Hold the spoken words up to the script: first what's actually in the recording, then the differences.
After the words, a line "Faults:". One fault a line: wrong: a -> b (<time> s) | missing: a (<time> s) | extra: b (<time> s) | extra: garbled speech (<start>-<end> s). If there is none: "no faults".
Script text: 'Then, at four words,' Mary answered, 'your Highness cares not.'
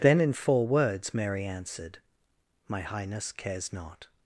'Then, in four words,' Mary answered, 'my Highness cares not.'
Faults:
wrong: at -> in (0.2 s)
wrong: your -> my (2.7 s)